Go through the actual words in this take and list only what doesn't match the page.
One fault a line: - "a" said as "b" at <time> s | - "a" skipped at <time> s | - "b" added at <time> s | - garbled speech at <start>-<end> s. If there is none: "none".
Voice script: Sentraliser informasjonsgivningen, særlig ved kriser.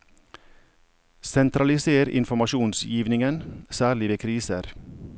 none